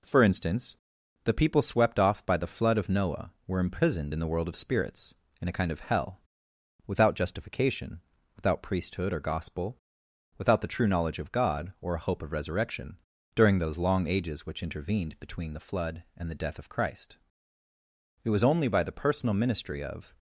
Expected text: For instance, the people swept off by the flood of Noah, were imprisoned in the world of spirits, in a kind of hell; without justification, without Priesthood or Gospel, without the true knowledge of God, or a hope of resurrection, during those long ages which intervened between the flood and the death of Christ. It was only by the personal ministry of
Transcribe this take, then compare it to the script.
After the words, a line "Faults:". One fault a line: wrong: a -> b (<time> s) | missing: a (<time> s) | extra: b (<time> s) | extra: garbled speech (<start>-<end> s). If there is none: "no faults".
For instance, the people swept off by the flood of Noah, were imprisoned in the world of spirits, in a kind of hell; without justification, without Priesthood or Gospel, without the true knowledge of God, or a hope of resurrection, during those long ages which intervened between the flood and the death of Christ. It was only by the personal ministry of
Faults:
no faults